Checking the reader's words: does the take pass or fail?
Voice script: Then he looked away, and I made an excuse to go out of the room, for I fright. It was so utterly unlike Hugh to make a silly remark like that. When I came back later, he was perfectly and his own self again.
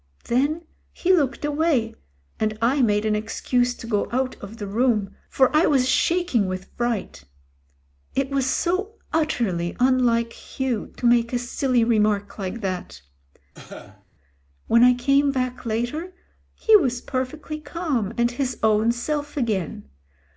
fail